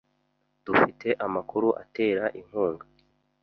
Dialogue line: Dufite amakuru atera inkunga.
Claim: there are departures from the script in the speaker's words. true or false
false